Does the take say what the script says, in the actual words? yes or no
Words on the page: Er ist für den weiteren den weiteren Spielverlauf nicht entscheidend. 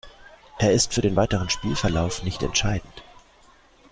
no